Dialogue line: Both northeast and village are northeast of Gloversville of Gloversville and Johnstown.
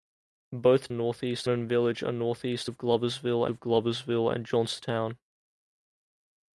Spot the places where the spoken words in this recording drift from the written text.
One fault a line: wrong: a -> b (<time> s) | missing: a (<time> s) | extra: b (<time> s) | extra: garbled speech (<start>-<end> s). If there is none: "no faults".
no faults